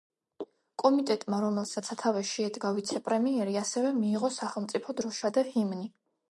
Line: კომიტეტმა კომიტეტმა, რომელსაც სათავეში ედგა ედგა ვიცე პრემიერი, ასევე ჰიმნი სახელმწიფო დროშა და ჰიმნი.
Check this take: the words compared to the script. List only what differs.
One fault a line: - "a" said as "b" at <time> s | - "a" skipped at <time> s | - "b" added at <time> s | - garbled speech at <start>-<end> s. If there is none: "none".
- "კომიტეტმა" skipped at 1.4 s
- "ედგა" skipped at 2.7 s
- "ჰიმნი" said as "მიიღო" at 4.0 s